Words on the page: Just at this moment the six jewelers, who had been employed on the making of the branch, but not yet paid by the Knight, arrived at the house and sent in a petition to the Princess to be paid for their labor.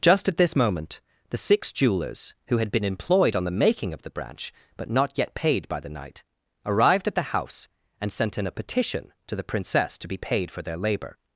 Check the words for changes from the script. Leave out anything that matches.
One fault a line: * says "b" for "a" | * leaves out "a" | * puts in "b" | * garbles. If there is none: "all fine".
all fine